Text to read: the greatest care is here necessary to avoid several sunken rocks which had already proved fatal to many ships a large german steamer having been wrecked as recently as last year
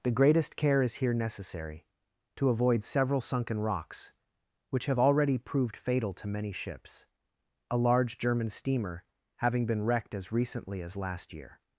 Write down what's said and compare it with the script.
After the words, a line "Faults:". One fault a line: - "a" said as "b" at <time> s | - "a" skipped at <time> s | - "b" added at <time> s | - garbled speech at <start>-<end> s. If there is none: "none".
the greatest care is here necessary to avoid several sunken rocks which have already proved fatal to many ships a large german steamer having been wrecked as recently as last year
Faults:
- "had" said as "have" at 4.9 s